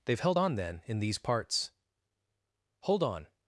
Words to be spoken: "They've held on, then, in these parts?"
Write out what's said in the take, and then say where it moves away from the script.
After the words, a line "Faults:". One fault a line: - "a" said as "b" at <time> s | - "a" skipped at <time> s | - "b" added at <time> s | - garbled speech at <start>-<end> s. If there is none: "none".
"They've held on, then, in these parts?" "Hold on
Faults:
- "Hold on" added at 2.8 s